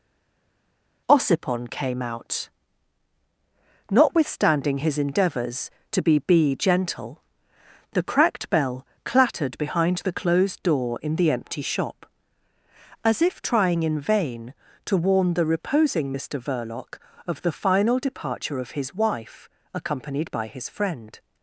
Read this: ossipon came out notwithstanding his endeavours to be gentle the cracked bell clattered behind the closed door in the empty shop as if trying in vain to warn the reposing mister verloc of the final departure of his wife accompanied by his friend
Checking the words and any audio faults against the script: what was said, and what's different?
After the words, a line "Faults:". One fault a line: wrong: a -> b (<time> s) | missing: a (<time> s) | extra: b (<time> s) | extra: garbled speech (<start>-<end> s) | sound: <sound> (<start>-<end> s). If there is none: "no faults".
ossipon came out notwithstanding his endeavours to be be gentle the cracked bell clattered behind the closed door in the empty shop as if trying in vain to warn the reposing mister verloc of the final departure of his wife accompanied by his friend
Faults:
extra: be (6.2 s)